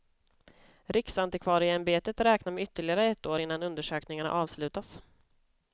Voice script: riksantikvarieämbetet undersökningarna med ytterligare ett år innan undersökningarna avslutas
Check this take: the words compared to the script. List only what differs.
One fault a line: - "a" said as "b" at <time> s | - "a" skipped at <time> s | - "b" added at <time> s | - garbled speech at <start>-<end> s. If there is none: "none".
- "undersökningarna" said as "räknar" at 2.2 s